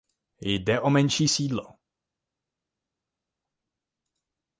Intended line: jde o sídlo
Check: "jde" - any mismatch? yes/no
no